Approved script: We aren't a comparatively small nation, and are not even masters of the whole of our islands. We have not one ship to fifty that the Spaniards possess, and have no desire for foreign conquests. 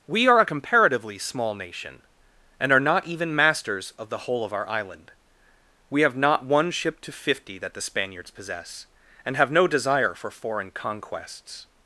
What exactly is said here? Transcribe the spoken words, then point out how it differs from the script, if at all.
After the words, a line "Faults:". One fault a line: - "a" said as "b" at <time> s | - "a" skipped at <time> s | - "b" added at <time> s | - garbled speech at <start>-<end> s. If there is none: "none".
We are a comparatively small nation, and are not even masters of the whole of our island. We have not one ship to fifty that the Spaniards possess, and have no desire for foreign conquests.
Faults:
- "aren't" said as "are" at 0.3 s
- "islands" said as "island" at 4.7 s